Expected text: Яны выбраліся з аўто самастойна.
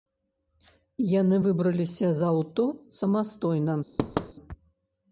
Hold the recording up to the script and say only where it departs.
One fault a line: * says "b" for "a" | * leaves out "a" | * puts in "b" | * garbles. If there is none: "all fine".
all fine